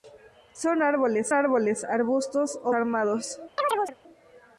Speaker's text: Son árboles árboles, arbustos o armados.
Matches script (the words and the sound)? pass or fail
fail